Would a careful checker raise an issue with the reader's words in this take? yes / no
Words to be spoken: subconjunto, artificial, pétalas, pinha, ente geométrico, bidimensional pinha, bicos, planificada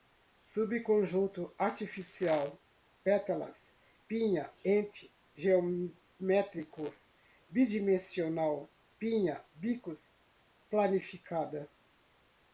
no